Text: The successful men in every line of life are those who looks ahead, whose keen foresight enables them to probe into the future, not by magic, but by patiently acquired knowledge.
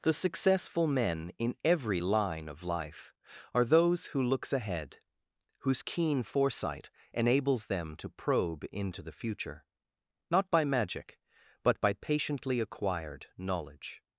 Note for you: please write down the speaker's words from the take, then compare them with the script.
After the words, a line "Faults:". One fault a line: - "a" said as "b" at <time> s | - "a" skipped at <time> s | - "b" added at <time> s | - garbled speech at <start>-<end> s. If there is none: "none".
The successful men in every line of life are those who looks ahead, whose keen foresight enables them to probe into the future, not by magic, but by patiently acquired knowledge.
Faults:
none